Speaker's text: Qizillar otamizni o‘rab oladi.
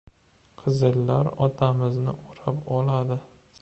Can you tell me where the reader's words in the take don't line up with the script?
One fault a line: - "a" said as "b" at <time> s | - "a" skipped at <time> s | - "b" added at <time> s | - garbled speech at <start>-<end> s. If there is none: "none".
none